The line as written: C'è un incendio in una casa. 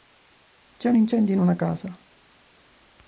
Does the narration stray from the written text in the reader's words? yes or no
no